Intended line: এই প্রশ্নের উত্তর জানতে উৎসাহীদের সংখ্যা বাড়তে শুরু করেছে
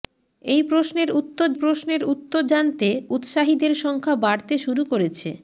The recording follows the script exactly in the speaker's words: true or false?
false